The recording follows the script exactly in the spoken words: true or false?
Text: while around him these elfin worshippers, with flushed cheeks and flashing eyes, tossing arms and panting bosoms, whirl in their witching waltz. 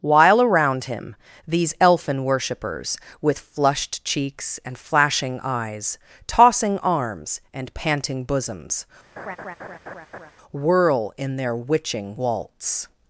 true